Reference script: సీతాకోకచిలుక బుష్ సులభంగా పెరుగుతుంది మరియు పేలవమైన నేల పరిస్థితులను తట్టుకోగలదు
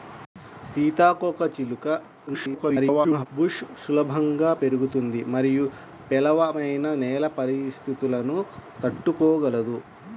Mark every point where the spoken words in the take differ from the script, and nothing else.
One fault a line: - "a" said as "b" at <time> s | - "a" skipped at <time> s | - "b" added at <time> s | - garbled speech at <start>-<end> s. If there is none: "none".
- garbled speech at 2.3-3.3 s